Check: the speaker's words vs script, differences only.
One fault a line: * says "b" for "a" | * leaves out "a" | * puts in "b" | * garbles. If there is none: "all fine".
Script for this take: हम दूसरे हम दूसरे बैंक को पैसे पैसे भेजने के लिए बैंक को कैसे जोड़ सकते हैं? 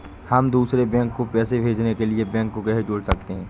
* leaves out "हम दूसरे"
* leaves out "पैसे"